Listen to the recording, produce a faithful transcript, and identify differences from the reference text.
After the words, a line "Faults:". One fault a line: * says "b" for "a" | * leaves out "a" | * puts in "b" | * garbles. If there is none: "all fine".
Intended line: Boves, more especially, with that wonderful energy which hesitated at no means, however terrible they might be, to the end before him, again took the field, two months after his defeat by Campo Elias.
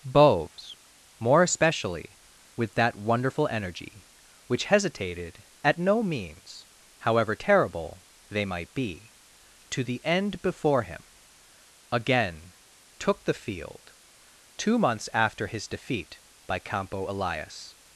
Boves, more especially, with that wonderful energy which hesitated at no means, however terrible they might be, to the end before him, again took the field, two months after his defeat by Campo Elias.
Faults:
all fine